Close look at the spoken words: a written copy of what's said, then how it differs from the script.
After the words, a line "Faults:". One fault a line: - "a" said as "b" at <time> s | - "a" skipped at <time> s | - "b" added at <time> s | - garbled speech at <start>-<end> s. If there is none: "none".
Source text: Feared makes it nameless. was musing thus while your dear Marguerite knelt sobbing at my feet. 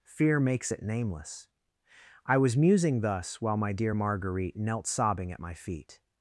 Fear makes it nameless. I was musing thus while my dear Marguerite knelt sobbing at my feet.
Faults:
- "Feared" said as "Fear" at 0.0 s
- "I" added at 2.3 s
- "your" said as "my" at 3.6 s